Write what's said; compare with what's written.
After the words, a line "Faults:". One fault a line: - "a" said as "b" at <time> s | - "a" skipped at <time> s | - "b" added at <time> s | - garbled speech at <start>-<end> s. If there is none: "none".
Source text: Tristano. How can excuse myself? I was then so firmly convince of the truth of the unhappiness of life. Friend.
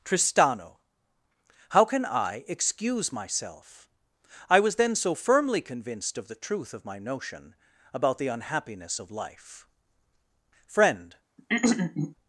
Tristano. How can I excuse myself? I was then so firmly convinced of the truth of my notion about the unhappiness of life. Friend.
Faults:
- "I" added at 2.0 s
- "convince" said as "convinced" at 5.6 s
- "my notion about" added at 6.8 s